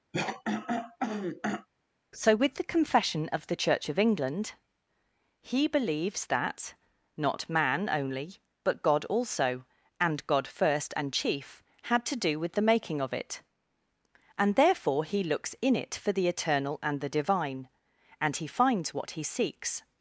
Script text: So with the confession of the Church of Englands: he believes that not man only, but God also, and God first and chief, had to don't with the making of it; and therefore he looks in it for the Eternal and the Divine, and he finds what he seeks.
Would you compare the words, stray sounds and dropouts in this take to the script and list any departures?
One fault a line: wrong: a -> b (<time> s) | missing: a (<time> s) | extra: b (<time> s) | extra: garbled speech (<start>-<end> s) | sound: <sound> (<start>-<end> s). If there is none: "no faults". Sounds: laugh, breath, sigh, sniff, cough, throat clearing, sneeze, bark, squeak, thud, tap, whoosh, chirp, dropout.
sound: throat clearing (0.1-1.7 s)
wrong: Englands -> England (4.0 s)
wrong: don't -> do (12.2 s)